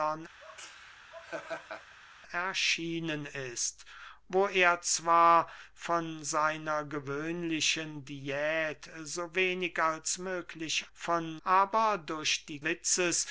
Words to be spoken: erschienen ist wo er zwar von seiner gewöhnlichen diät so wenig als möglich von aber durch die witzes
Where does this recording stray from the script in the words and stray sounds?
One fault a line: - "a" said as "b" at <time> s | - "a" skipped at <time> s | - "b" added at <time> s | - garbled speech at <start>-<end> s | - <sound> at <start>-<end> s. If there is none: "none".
- laugh at 0.4-2.0 s